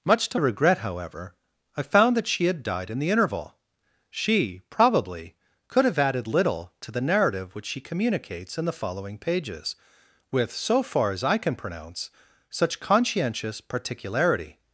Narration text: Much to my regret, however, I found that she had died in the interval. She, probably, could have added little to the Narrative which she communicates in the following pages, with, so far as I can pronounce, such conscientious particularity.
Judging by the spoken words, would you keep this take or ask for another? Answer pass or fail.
fail